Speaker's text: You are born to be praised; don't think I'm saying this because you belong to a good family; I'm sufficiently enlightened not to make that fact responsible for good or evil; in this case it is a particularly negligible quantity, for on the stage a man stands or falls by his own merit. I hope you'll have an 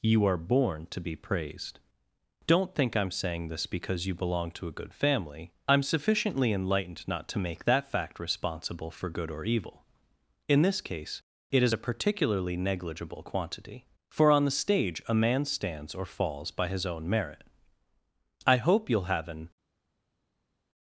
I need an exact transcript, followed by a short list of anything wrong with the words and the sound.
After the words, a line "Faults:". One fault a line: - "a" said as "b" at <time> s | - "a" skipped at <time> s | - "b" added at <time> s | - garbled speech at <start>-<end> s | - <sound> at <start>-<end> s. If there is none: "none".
You are born to be praised; don't think I'm saying this because you belong to a good family; I'm sufficiently enlightened not to make that fact responsible for good or evil; in this case it is a particularly negligible quantity, for on the stage a man stands or falls by his own merit. I hope you'll have an
Faults:
none